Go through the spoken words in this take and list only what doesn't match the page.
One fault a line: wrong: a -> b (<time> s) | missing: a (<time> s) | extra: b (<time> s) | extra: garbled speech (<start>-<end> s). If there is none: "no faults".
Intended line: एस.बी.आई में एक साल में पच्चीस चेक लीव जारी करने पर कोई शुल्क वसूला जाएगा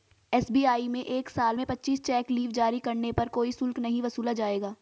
extra: नहीं (3.8 s)